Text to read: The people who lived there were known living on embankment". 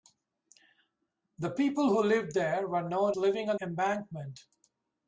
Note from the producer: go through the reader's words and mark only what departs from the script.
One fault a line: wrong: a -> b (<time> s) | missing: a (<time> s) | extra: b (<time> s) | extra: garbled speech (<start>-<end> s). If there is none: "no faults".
no faults